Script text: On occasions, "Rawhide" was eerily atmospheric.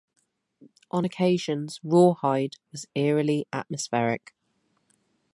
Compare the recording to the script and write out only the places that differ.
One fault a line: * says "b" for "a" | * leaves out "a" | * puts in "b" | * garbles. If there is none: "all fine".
all fine